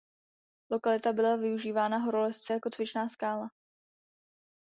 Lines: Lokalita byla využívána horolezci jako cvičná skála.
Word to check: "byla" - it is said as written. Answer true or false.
true